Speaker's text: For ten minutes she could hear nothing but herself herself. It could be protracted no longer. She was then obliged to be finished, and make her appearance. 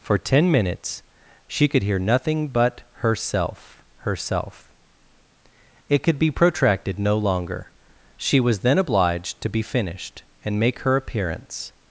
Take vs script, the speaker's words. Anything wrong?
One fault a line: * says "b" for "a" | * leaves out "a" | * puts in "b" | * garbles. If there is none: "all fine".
all fine